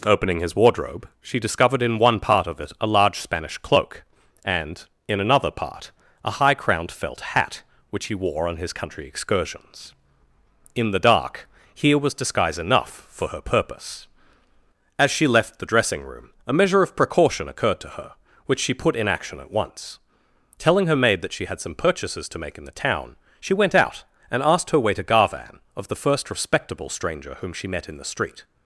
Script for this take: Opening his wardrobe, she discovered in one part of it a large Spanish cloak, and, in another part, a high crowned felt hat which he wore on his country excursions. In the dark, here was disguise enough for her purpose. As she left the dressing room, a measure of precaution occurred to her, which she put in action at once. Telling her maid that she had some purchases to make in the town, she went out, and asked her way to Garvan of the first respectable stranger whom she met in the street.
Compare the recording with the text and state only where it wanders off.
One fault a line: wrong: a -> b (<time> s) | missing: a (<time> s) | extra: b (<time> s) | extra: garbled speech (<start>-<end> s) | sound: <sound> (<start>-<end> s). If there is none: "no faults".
no faults